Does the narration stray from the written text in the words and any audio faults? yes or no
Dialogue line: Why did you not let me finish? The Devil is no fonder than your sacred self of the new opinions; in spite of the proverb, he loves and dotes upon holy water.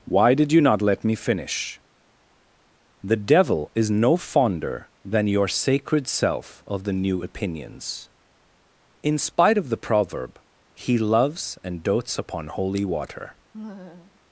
yes